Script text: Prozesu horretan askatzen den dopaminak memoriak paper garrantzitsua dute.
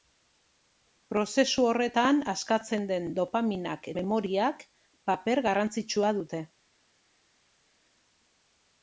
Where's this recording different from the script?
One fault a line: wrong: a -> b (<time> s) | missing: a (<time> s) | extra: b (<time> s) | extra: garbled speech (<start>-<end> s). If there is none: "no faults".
no faults